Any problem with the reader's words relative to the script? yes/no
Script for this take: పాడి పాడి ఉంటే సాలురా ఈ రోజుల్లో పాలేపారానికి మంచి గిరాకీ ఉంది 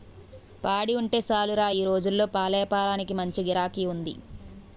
yes